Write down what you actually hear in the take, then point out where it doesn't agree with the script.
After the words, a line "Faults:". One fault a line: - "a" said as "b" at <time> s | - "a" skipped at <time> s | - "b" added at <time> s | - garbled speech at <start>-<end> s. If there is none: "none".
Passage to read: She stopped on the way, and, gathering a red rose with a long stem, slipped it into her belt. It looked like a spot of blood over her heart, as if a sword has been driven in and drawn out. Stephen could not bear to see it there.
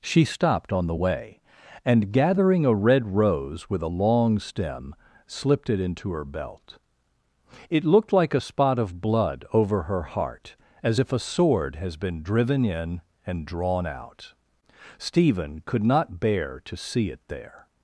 She stopped on the way, and, gathering a red rose with a long stem, slipped it into her belt. It looked like a spot of blood over her heart, as if a sword has been driven in and drawn out. Stephen could not bear to see it there.
Faults:
none